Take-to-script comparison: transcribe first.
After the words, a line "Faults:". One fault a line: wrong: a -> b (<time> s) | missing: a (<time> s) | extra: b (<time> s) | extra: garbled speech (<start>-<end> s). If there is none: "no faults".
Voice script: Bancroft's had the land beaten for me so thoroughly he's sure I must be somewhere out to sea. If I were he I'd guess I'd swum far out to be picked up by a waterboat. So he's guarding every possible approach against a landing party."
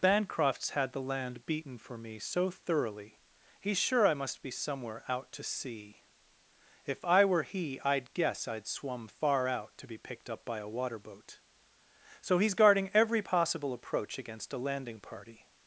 Bancroft's had the land beaten for me so thoroughly he's sure I must be somewhere out to sea. If I were he I'd guess I'd swum far out to be picked up by a waterboat. So he's guarding every possible approach against a landing party."
Faults:
no faults